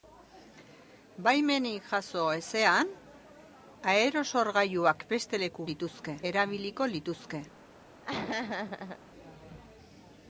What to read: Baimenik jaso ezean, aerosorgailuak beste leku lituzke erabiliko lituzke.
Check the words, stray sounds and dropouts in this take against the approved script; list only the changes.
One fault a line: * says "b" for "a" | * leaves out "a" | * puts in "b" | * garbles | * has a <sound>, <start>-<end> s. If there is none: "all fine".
* has a laugh, 8.0-9.0 s